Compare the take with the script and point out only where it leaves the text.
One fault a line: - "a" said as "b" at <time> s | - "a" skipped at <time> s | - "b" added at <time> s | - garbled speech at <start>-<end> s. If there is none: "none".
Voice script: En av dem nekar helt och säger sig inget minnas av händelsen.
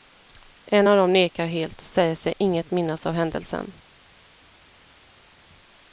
none